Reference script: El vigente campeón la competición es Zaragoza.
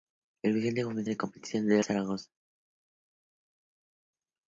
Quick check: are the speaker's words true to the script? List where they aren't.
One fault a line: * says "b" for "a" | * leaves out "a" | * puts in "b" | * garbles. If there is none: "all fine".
all fine